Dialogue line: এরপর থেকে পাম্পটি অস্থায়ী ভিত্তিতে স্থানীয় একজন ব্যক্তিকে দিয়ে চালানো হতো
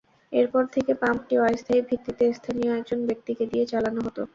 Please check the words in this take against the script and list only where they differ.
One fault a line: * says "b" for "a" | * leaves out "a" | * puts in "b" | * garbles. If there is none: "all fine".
all fine